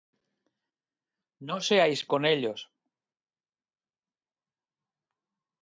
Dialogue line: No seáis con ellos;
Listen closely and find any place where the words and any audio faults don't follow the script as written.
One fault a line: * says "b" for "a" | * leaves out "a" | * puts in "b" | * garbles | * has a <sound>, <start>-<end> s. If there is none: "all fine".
all fine